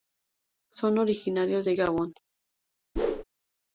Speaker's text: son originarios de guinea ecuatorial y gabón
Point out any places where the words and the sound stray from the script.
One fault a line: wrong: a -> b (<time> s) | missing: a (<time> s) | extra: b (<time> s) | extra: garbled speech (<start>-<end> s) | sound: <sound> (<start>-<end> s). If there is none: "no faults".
missing: guinea ecuatorial y (1.7 s)
sound: whoosh (3.0-3.2 s)